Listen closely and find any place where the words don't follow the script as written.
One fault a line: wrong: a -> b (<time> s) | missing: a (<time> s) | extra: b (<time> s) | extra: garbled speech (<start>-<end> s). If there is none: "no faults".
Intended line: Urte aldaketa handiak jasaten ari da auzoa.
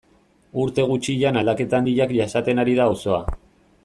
extra: gutxian (0.9 s)